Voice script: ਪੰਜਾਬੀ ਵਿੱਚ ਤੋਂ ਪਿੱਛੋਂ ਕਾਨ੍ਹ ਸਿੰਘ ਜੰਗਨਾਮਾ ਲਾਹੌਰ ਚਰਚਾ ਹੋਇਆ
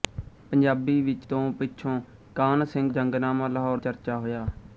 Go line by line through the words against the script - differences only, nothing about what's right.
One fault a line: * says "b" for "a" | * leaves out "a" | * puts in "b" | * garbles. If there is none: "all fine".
all fine